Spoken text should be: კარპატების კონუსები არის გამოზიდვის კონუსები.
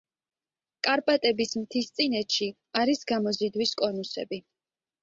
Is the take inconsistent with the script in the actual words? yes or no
yes